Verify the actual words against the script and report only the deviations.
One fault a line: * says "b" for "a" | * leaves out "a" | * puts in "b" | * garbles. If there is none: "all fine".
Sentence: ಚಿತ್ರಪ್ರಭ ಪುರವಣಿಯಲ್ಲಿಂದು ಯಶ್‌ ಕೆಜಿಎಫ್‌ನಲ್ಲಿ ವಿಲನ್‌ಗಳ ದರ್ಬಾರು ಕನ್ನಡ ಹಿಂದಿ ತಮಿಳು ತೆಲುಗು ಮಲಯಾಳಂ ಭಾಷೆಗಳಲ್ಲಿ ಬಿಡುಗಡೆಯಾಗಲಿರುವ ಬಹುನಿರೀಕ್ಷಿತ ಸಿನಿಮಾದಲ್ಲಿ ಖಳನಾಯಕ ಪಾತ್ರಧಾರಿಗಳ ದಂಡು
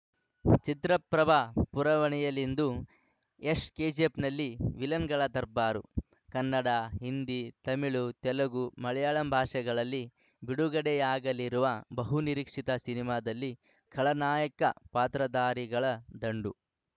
all fine